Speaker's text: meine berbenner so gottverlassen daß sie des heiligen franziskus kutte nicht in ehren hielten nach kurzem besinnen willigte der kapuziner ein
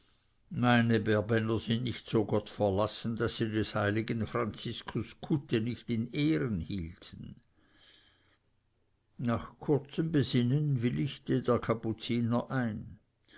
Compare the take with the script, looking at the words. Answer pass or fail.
fail